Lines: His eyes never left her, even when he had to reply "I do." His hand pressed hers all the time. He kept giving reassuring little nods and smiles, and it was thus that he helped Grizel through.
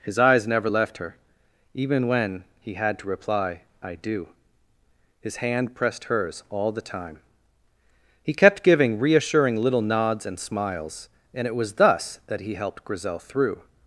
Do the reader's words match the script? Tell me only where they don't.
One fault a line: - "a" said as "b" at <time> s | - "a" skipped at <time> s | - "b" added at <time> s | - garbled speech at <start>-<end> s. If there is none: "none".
none